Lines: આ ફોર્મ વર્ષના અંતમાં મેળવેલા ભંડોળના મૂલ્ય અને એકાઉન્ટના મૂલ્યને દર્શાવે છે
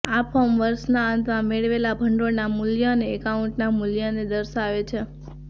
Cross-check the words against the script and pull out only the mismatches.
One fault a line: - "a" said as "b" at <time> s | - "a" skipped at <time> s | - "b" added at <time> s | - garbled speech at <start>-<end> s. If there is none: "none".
none